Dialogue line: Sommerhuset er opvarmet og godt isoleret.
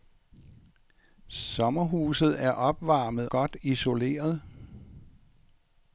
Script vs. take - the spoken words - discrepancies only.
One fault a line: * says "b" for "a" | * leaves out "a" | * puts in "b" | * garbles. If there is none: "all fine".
* leaves out "og"